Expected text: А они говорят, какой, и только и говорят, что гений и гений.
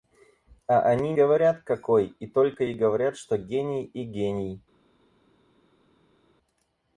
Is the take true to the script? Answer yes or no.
yes